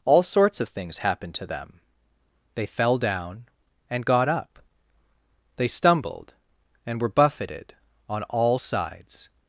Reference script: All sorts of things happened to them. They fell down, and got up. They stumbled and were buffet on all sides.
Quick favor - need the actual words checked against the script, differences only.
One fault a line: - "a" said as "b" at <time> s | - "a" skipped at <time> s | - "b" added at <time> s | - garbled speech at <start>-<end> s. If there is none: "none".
- "buffet" said as "buffeted" at 7.1 s